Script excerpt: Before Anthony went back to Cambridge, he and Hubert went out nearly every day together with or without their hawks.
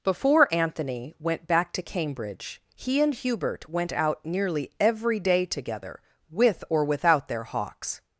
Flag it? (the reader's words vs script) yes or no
no